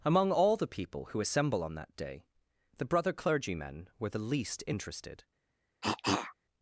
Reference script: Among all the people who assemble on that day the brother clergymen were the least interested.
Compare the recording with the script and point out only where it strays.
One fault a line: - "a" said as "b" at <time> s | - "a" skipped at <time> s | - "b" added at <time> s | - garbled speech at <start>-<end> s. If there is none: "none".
none